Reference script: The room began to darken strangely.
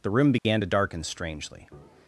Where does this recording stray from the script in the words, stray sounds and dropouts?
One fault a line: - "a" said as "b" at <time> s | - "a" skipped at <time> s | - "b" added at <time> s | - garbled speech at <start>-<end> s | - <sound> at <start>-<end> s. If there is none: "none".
- dropout at 0.4-0.4 s